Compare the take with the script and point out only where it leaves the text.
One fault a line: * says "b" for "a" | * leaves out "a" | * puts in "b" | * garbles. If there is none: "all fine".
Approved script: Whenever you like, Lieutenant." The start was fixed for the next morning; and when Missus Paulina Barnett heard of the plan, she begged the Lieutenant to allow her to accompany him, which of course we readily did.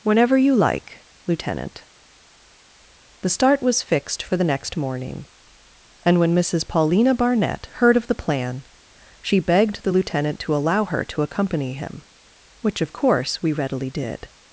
all fine